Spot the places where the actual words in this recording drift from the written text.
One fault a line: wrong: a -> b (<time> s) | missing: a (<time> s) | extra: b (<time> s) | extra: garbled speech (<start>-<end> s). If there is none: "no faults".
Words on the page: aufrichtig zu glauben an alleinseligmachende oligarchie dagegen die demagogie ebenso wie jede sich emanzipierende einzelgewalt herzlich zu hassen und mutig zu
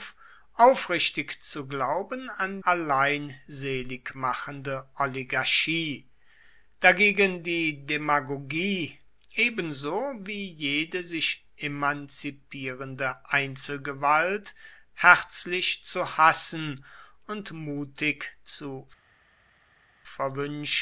no faults